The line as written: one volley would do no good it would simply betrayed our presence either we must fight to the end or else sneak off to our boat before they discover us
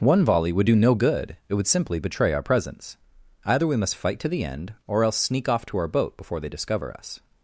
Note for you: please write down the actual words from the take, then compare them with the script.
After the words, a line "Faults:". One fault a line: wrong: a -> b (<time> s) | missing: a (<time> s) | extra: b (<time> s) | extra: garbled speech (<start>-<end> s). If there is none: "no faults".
one volley would do no good it would simply betray our presence either we must fight to the end or else sneak off to our boat before they discover us
Faults:
wrong: betrayed -> betray (2.0 s)